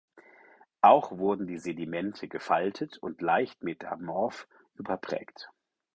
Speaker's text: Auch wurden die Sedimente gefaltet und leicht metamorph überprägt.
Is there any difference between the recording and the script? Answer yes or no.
no